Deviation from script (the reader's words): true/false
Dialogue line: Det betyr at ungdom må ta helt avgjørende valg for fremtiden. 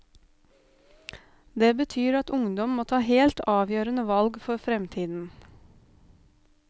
false